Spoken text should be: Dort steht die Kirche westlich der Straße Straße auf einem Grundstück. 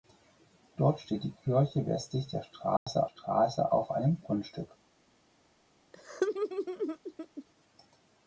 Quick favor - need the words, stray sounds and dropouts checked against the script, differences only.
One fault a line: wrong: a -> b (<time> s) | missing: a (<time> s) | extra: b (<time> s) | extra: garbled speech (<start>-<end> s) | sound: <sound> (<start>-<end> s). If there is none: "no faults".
sound: dropout (2.8-2.9 s)
sound: laugh (5.9-7.4 s)